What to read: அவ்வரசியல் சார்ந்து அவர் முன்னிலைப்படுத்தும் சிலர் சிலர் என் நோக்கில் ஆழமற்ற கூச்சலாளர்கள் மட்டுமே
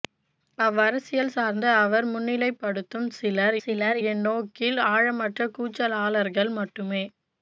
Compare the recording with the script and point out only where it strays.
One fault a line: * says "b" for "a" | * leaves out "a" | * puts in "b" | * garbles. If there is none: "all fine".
all fine